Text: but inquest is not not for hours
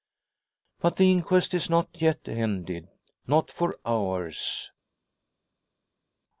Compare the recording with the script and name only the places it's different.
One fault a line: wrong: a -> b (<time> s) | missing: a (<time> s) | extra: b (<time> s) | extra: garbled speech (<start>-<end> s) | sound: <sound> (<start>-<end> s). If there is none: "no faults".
extra: the (0.9 s)
extra: yet ended (2.0 s)